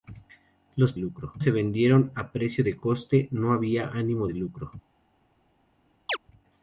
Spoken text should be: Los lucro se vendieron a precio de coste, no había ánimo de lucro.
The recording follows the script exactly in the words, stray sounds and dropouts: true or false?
false